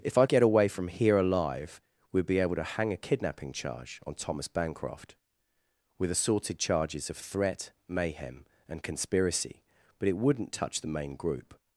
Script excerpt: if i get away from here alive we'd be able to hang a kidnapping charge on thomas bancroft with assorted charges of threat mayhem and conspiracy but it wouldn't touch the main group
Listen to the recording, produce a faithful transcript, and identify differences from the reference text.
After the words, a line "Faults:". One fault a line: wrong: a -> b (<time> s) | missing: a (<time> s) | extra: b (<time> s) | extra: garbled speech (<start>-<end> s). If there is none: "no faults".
if i get away from here alive we'd be able to hang a kidnapping charge on thomas bancroft with assorted charges of threat mayhem and conspiracy but it wouldn't touch the main group
Faults:
no faults